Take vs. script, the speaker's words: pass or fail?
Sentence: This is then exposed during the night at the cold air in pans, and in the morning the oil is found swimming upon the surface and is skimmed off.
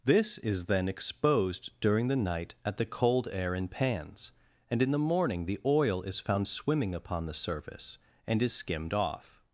pass